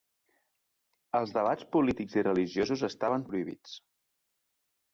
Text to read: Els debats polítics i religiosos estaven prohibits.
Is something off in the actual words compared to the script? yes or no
no